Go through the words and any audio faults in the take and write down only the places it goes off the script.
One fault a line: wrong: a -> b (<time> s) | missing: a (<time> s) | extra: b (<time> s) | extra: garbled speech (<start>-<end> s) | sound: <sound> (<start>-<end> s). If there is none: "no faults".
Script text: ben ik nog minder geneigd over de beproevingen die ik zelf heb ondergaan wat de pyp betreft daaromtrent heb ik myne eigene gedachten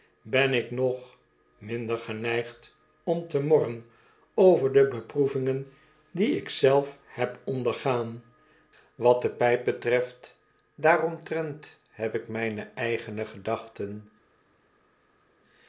extra: om te morren (3.0 s)